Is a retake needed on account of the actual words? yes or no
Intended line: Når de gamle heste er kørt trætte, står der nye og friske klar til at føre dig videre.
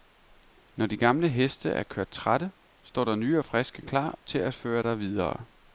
no